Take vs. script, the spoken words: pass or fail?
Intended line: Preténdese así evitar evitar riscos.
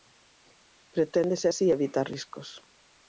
fail